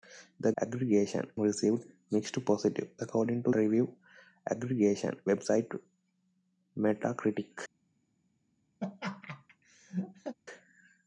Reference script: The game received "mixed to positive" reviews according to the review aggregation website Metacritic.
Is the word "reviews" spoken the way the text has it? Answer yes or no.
no